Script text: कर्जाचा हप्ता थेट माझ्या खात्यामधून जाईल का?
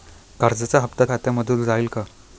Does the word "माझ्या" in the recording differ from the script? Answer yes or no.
yes